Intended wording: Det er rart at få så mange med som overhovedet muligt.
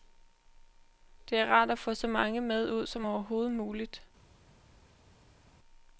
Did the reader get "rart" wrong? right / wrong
right